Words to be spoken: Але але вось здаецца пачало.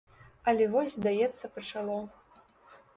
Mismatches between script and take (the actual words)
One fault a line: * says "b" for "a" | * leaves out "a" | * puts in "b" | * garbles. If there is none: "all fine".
* leaves out "але"